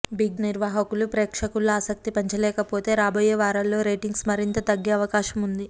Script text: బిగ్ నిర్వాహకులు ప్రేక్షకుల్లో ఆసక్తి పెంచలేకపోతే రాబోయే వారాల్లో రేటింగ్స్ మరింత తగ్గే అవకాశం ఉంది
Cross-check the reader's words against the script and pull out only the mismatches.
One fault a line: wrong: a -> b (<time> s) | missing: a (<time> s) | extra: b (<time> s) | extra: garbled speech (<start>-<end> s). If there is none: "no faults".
no faults